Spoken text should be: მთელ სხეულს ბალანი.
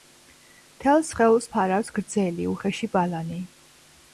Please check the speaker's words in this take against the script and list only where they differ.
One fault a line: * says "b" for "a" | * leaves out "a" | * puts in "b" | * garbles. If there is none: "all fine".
* puts in "ფარავს გრძელი უხეში"